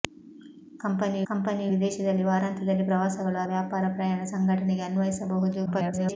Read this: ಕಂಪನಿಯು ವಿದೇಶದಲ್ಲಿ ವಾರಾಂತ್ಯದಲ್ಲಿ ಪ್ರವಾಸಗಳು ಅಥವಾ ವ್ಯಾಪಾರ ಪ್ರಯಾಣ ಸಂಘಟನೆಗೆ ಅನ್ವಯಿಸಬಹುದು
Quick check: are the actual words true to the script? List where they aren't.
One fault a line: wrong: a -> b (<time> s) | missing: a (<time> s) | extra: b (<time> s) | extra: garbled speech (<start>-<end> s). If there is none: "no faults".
extra: ಕಂಪನಿಯು (1.3 s)
missing: ಅಥವಾ (3.4 s)
extra: garbled speech (5.7-6.2 s)